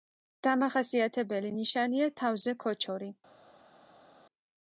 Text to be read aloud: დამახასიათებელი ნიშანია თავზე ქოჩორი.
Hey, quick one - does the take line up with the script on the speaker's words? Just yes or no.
yes